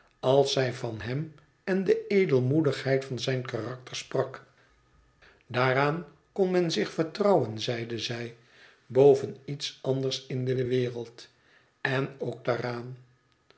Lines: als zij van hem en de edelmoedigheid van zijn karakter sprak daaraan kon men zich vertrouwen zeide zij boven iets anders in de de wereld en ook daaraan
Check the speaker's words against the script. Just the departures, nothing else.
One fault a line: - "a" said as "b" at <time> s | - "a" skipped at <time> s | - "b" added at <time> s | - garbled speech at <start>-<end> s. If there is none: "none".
none